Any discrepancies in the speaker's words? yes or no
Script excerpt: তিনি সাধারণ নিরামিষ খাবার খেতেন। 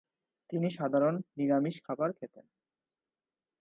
no